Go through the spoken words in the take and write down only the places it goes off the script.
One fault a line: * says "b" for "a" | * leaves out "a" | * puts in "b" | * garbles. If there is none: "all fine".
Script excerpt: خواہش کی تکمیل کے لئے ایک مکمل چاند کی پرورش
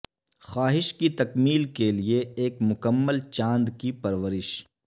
all fine